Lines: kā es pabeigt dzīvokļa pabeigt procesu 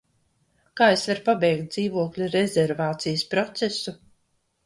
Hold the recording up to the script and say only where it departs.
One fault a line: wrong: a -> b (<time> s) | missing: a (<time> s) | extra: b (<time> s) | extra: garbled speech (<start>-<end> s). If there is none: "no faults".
extra: varu (1.1 s)
wrong: pabeigt -> rezervācijas (2.3 s)